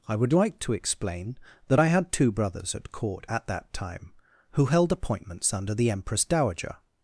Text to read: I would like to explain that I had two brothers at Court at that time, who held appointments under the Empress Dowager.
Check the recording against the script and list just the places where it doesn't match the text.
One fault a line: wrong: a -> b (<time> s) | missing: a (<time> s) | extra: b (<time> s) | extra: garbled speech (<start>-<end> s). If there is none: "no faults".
no faults